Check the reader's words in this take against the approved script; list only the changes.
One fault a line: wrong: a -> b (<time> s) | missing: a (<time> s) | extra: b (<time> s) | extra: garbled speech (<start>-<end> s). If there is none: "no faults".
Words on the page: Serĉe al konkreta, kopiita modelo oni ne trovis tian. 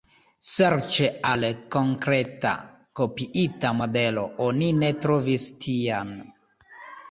no faults